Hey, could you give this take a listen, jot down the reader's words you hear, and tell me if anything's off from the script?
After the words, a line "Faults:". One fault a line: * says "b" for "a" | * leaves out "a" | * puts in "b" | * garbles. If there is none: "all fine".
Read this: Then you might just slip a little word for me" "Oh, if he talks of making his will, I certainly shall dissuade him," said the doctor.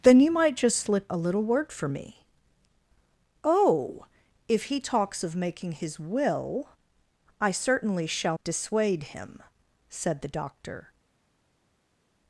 Then you might just slip a little word for me" "Oh, if he talks of making his will, I certainly shall dissuade him," said the doctor.
Faults:
all fine